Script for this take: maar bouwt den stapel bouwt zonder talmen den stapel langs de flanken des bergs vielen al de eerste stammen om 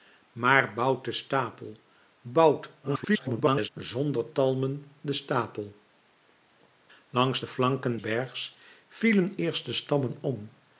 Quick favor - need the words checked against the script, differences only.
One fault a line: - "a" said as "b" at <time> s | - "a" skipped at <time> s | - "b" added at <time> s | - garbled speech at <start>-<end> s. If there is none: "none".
- garbled speech at 2.8-3.7 s
- "des" skipped at 8.0 s
- "al de" skipped at 9.4 s